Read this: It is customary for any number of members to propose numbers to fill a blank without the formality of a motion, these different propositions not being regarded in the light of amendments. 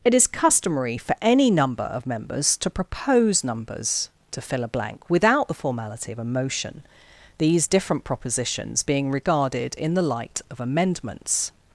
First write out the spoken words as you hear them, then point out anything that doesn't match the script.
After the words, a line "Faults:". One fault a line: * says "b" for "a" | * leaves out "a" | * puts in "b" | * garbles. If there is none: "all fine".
It is customary for any number of members to propose numbers to fill a blank without the formality of a motion, these different propositions being regarded in the light of amendments.
Faults:
* leaves out "not"